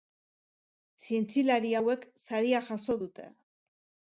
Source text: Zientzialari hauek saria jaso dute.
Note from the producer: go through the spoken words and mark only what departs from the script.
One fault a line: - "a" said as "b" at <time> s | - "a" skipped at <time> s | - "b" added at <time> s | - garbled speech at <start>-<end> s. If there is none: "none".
none